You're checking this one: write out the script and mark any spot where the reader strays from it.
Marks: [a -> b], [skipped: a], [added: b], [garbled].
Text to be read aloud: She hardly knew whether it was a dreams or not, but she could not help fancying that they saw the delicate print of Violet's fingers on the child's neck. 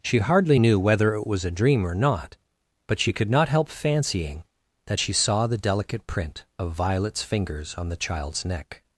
She hardly knew whether it was a [dreams -> dream] or not, but she could not help fancying that [they -> she] saw the delicate print of Violet's fingers on the child's neck.